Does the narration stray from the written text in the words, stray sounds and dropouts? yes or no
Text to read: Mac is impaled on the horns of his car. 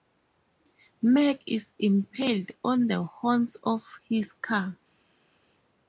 no